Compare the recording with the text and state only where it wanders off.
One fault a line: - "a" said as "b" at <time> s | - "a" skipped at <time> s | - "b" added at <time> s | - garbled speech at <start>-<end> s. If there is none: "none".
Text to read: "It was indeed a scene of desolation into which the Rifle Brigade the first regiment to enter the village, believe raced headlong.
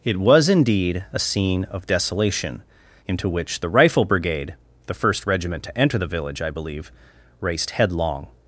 - "I" added at 6.4 s